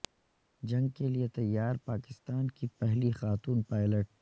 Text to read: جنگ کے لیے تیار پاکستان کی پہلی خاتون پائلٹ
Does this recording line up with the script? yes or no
yes